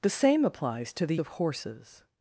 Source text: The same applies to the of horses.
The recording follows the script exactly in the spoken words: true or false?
true